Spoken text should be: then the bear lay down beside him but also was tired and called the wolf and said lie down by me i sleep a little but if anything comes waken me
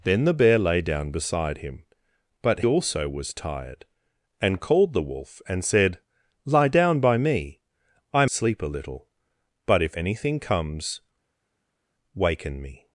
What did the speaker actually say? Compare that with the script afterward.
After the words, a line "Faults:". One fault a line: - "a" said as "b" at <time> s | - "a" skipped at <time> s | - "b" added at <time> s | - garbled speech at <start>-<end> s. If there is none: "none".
then the bear lay down beside him but also was tired and called the wolf and said lie down by me i sleep a little but if anything comes waken me
Faults:
none